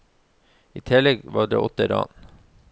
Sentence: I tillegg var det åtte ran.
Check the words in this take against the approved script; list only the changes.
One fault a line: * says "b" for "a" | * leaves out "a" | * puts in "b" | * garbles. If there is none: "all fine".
all fine